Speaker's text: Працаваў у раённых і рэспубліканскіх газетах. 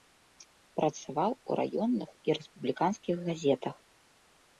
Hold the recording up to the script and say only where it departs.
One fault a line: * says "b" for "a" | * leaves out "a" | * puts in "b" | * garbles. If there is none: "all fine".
all fine